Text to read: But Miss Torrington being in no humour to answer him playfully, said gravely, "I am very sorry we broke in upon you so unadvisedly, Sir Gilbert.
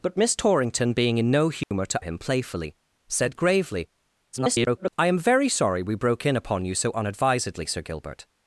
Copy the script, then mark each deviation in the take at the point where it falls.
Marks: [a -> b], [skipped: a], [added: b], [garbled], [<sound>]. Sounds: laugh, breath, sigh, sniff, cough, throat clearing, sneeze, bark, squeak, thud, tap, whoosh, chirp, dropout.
But Miss Torrington being in no humour [dropout] to [skipped: answer] him playfully, said gravely, [garbled] "I am very sorry we broke in upon you so unadvisedly, Sir Gilbert.